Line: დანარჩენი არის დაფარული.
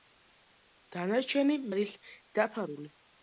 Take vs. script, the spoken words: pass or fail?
pass